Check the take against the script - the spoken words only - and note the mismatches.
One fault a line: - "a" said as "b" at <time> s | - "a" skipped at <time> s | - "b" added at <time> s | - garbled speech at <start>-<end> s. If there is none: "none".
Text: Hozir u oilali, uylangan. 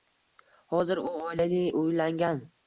none